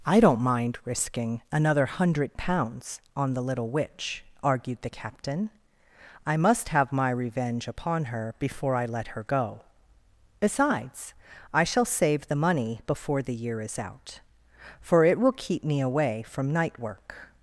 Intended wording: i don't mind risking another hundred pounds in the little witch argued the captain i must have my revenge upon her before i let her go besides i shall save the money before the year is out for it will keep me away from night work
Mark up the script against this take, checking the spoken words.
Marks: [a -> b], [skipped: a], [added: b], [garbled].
i don't mind risking another hundred pounds [in -> on] the little witch argued the captain i must have my revenge upon her before i let her go besides i shall save the money before the year is out for it will keep me away from night work